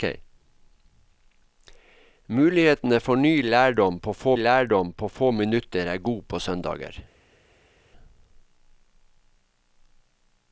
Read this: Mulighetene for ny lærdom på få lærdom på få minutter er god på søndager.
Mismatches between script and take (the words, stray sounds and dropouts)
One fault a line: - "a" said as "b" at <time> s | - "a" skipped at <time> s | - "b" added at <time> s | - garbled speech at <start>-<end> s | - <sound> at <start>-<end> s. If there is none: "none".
none